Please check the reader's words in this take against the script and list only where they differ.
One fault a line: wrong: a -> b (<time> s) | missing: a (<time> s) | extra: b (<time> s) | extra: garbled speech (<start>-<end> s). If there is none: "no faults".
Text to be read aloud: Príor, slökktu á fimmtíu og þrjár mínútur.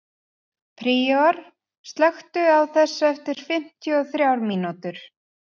extra: þessu eftir (2.8 s)